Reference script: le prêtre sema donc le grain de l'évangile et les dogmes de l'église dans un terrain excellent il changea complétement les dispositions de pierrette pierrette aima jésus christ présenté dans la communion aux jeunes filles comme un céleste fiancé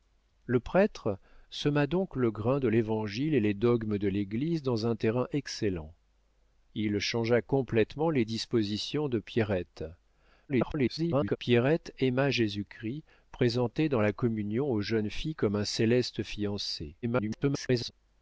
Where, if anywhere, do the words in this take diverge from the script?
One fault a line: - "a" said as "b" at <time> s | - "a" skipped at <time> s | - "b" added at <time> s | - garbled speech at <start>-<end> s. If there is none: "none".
- garbled speech at 10.5-11.4 s
- garbled speech at 17.0-17.9 s